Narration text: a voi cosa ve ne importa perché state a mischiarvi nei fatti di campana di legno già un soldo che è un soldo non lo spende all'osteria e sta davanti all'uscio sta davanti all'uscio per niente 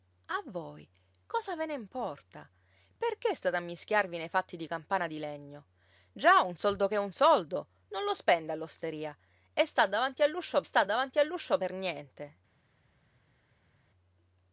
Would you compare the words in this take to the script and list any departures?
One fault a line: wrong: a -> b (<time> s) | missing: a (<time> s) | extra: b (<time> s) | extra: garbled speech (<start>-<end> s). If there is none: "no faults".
no faults